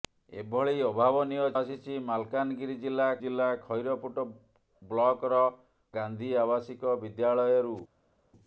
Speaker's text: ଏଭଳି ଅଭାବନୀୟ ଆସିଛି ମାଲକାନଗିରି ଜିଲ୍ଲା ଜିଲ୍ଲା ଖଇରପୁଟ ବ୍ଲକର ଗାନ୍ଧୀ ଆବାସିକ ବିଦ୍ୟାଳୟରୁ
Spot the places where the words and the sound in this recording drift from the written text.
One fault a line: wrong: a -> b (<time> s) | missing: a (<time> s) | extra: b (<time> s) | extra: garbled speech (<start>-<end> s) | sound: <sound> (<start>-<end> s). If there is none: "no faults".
no faults